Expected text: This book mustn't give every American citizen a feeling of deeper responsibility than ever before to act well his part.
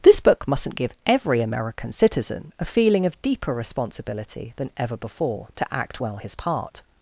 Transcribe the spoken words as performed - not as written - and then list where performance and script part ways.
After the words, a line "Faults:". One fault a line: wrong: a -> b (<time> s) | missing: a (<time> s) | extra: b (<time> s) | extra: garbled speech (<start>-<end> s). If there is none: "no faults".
This book mustn't give every American citizen a feeling of deeper responsibility than ever before to act well his part.
Faults:
no faults